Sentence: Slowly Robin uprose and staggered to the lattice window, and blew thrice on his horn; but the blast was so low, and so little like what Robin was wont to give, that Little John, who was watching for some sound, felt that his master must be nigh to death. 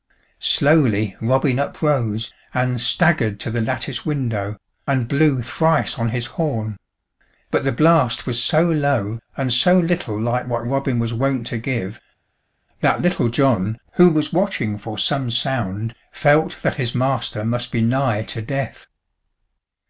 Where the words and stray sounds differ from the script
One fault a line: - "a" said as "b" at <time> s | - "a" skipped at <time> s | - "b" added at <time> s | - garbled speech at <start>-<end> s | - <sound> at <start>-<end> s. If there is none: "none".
none